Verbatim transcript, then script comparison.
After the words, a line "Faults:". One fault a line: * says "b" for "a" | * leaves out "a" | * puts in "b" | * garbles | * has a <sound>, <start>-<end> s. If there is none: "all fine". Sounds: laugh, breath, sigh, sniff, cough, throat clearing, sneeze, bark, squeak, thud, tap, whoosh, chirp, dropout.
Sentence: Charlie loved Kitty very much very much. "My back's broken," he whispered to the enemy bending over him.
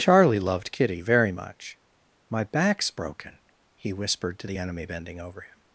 Charlie loved Kitty very much. "My back's broken," he whispered to the enemy bending over him.
Faults:
* leaves out "very much"